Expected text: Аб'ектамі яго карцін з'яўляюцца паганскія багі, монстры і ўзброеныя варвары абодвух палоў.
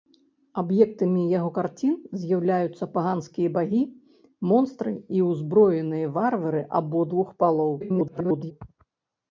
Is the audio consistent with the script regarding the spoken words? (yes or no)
no